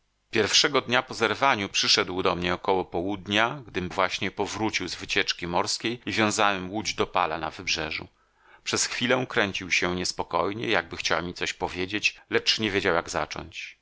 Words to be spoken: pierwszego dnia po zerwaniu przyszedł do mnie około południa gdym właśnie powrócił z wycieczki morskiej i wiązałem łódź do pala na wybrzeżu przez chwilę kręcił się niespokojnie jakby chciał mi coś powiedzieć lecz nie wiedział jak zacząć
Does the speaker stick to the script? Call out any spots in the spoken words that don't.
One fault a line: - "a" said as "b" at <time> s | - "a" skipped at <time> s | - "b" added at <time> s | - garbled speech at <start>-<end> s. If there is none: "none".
none